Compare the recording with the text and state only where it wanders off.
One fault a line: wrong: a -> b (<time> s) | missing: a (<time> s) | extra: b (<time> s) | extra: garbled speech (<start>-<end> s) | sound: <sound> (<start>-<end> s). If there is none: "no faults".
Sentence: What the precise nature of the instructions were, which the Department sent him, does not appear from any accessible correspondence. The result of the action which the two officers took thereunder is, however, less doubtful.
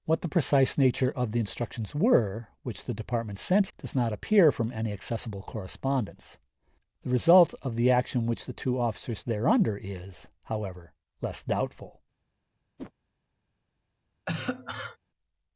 missing: him (3.7 s)
missing: took (9.2 s)
sound: whoosh (12.8-12.9 s)
sound: cough (14.3-15.0 s)